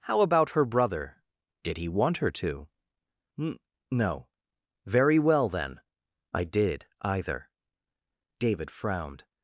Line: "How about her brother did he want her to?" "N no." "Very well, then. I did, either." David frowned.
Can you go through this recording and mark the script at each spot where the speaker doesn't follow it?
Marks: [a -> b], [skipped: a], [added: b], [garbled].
"How about her brother did he want her to?" "N no." "Very well, then. I did, either." David frowned.